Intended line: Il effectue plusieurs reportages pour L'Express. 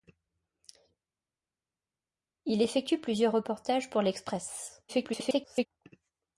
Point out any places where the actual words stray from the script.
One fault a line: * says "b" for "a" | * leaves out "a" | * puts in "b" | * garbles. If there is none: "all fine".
* garbles